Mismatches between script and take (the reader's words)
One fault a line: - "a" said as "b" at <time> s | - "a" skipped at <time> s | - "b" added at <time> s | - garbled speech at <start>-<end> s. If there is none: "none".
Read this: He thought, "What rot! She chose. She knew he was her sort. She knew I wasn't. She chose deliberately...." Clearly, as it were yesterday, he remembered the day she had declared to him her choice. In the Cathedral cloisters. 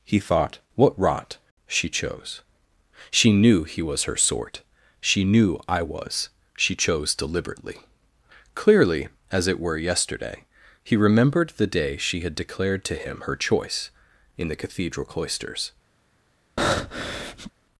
- "wasn't" said as "was" at 5.8 s